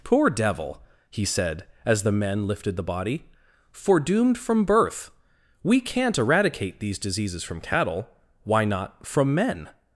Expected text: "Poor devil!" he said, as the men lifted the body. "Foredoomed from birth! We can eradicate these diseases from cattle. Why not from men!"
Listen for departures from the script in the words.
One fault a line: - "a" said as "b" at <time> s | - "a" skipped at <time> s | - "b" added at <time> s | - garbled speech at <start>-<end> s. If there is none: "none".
- "can" said as "can't" at 5.8 s